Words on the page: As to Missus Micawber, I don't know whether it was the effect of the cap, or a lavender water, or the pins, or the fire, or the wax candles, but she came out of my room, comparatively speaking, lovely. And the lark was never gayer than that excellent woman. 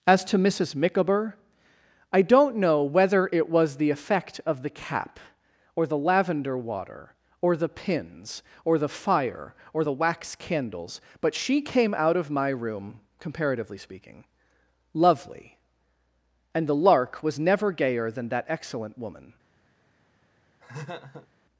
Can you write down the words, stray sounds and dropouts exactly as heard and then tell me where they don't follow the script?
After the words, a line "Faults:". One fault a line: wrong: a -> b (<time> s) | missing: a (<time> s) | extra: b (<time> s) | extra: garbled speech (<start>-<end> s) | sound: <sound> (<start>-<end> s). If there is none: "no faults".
As to Missus Micawber, I don't know whether it was the effect of the cap, or the lavender water, or the pins, or the fire, or the wax candles, but she came out of my room, comparatively speaking, lovely. And the lark was never gayer than that excellent woman.
Faults:
wrong: a -> the (5.8 s)
sound: laugh (20.6-21.3 s)